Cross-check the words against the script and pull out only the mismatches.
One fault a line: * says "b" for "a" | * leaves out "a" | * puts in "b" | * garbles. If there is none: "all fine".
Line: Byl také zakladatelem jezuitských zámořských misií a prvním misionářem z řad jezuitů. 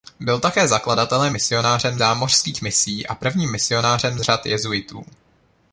* says "misionářem" for "jezuitských"
* leaves out "z"